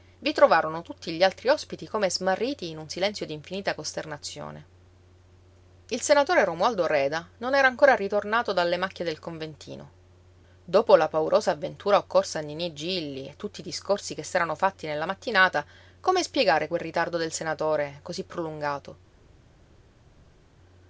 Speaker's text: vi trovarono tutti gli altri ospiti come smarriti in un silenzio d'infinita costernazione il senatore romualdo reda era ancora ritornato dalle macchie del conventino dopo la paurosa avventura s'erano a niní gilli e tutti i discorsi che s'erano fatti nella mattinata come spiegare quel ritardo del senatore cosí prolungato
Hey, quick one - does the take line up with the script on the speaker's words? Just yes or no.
no